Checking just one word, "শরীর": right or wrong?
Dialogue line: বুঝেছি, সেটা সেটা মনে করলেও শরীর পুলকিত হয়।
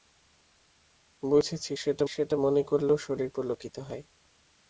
right